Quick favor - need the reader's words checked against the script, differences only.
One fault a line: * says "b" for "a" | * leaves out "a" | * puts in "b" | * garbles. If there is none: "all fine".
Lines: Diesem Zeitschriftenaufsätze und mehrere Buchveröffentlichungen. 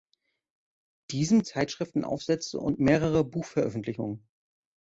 all fine